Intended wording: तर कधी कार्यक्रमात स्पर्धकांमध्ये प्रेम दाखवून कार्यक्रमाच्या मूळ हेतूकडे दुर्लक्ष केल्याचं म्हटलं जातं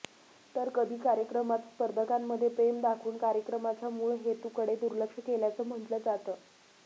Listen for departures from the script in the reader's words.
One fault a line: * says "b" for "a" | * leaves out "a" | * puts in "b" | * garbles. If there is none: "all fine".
all fine